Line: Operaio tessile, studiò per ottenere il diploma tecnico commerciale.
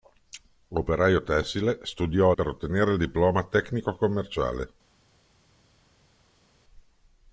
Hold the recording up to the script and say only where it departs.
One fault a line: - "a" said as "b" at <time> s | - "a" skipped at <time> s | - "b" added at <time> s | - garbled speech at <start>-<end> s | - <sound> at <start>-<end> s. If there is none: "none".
none